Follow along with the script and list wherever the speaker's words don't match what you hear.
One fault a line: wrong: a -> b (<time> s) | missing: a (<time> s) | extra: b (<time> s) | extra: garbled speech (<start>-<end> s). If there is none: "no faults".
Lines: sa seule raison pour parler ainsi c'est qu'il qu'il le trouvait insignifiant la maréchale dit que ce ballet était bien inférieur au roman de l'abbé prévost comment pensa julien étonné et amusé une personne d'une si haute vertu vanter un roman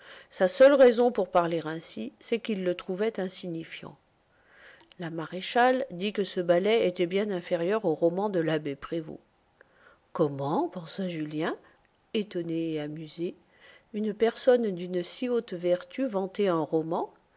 missing: qu'il (2.6 s)